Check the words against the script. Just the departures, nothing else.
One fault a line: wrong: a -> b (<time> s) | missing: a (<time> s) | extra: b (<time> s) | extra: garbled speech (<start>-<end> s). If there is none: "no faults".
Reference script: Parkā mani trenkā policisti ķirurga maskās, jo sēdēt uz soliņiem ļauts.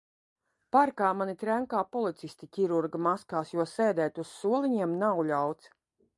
extra: nav (5.0 s)